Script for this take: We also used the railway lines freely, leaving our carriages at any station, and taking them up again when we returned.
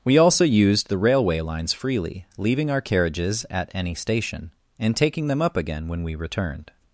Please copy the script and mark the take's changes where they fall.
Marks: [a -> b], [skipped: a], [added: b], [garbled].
We also used the railway lines freely, leaving our carriages at any station, and taking them up again when we returned.